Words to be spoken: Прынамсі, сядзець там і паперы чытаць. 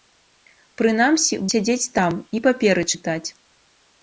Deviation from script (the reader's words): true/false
false